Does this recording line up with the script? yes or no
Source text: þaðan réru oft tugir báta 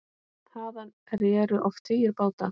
yes